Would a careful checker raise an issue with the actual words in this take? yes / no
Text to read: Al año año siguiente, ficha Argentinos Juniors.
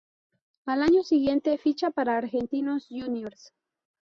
yes